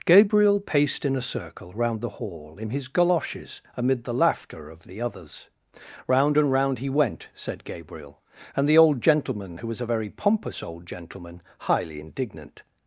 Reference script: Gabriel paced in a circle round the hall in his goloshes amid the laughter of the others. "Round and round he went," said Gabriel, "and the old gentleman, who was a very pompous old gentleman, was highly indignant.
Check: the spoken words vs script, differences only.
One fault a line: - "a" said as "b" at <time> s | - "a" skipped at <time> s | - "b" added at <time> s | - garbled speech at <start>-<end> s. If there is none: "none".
- "was" skipped at 11.4 s